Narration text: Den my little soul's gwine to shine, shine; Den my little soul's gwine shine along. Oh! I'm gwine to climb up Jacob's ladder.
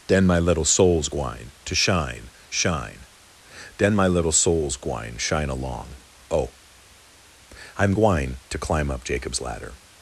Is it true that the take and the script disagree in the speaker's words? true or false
false